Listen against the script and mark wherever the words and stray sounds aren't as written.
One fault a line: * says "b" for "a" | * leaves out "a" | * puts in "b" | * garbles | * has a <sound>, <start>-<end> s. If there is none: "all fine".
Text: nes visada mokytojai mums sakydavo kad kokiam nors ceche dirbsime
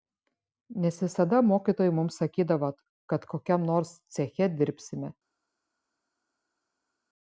all fine